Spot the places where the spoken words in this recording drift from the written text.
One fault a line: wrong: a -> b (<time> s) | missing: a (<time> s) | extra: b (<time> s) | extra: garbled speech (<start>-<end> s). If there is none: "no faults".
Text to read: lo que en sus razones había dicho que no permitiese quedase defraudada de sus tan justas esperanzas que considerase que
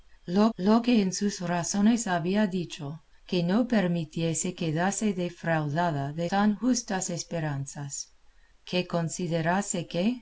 extra: lo (0.6 s)
missing: sus (6.3 s)